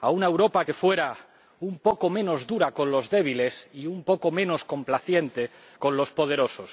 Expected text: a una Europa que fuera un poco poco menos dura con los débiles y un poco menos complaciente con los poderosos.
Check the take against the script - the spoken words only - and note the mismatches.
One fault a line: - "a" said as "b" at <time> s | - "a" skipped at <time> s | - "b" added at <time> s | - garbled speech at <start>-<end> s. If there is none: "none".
- "poco" skipped at 2.1 s